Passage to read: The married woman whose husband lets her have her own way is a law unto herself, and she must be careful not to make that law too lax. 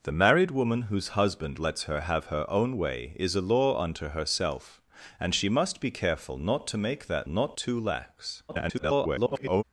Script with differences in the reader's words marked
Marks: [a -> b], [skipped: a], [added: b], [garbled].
The married woman whose husband lets her have her own way is a law unto herself, and she must be careful not to make that [law -> not] too lax. [garbled]